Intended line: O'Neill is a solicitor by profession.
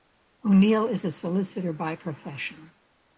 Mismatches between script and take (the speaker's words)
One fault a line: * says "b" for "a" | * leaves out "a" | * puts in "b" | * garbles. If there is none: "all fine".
all fine